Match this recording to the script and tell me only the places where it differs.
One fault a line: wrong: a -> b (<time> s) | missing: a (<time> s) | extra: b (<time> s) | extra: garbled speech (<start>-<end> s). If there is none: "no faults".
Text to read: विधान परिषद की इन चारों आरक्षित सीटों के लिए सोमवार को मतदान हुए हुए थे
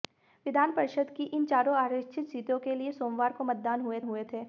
no faults